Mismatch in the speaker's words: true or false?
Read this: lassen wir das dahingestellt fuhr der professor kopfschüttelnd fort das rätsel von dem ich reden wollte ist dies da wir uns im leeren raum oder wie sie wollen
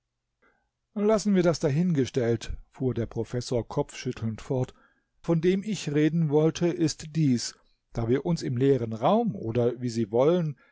true